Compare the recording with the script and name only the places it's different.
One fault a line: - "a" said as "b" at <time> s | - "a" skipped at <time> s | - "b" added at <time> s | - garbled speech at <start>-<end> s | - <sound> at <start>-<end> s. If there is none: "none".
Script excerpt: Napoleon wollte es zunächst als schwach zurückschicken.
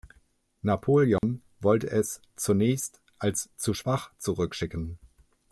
- dropout at 1.2-1.2 s
- "zu" added at 3.5 s